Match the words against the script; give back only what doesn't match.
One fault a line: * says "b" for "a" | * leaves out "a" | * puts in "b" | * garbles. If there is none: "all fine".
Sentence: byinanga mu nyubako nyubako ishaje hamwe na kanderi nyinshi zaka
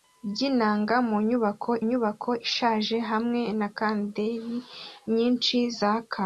all fine